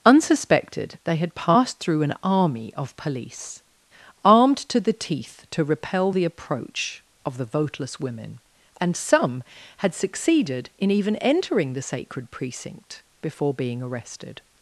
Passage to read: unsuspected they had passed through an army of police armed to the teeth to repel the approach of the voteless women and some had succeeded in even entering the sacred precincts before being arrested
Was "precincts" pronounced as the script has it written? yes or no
no